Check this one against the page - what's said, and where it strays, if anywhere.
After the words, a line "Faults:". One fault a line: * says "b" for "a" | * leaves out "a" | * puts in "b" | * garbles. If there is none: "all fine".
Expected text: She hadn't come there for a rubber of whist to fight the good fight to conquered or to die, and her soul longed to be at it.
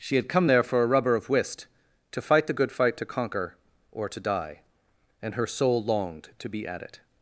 She had come there for a rubber of whist to fight the good fight to conquer or to die, and her soul longed to be at it.
Faults:
* says "had" for "hadn't"
* says "conquer" for "conquered"